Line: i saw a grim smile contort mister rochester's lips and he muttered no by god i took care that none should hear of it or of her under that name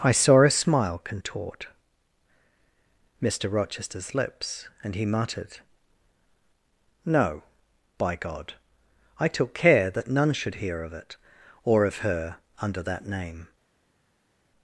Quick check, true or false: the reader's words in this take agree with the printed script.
false